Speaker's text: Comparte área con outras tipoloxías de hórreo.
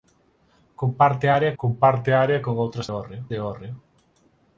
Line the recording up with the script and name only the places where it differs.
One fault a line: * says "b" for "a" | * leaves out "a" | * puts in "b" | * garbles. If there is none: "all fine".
* puts in "comparte área"
* says "hórreo" for "tipoloxías"